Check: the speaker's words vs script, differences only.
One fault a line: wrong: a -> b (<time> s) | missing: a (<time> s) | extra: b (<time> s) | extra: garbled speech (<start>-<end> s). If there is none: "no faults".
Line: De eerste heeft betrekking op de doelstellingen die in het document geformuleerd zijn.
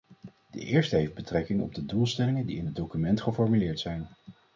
no faults